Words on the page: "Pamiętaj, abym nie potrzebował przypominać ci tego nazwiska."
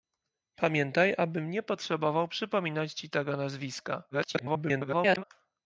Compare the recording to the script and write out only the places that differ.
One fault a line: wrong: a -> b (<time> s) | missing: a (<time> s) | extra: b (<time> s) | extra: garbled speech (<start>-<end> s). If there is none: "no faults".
extra: garbled speech (4.1-5.2 s)